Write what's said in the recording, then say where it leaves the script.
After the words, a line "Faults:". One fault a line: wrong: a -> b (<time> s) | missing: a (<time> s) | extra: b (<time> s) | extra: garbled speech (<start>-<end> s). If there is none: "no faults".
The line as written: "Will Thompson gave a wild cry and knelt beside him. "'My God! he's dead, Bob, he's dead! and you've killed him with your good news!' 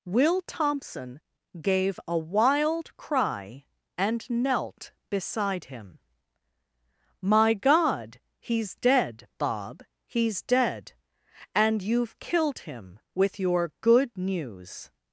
"Will Thompson gave a wild cry and knelt beside him. "'My God! he's dead, Bob, he's dead! and you've killed him with your good news!'
Faults:
no faults